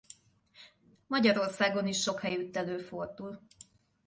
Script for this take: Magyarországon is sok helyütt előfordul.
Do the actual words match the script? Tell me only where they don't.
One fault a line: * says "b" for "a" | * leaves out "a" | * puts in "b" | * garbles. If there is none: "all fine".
all fine